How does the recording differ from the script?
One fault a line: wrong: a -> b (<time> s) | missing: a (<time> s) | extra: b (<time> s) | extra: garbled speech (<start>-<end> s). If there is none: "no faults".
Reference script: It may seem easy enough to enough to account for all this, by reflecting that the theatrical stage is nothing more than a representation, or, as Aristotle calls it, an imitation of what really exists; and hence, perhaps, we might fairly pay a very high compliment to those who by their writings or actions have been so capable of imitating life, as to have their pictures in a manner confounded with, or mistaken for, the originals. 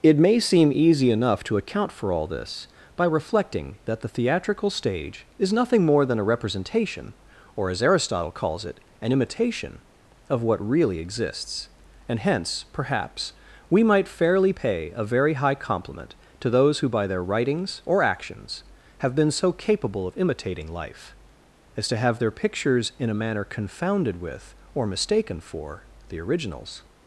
missing: enough to (1.6 s)